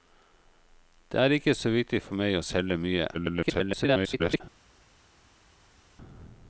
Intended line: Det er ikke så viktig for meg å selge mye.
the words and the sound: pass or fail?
fail